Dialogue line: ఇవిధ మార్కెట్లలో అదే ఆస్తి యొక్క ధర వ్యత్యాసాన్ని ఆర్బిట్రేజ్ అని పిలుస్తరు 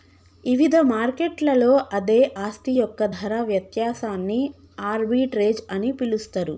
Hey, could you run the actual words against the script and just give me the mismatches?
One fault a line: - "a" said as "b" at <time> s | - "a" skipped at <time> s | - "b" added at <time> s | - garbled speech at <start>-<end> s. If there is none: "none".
none